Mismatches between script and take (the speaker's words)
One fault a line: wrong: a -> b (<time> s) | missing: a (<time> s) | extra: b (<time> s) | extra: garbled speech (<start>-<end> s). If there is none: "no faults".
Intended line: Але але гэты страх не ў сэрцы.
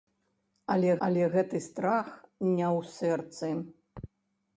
no faults